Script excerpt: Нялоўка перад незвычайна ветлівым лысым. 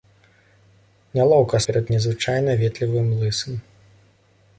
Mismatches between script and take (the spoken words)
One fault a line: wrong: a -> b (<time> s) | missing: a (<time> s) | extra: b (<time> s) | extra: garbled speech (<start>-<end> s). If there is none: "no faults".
no faults